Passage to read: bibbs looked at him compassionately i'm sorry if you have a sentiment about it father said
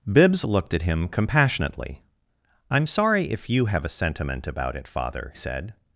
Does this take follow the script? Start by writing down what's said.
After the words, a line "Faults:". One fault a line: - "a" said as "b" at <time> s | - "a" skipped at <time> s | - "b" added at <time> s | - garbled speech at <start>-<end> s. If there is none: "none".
bibbs looked at him compassionately i'm sorry if you have a sentiment about it father said
Faults:
none